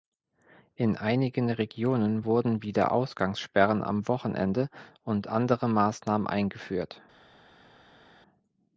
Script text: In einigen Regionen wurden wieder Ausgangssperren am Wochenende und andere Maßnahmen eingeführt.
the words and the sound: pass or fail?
pass